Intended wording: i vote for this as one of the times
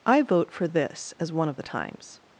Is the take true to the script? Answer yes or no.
yes